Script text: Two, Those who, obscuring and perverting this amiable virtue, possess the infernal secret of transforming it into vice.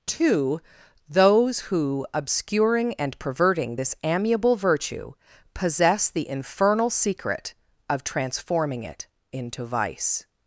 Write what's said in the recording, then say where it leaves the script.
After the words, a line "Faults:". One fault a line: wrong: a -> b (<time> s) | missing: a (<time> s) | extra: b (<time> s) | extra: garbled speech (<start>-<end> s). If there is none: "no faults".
Two, Those who, obscuring and perverting this amiable virtue, possess the infernal secret of transforming it into vice.
Faults:
no faults